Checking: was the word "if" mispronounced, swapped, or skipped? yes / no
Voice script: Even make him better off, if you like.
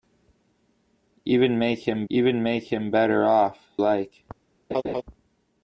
yes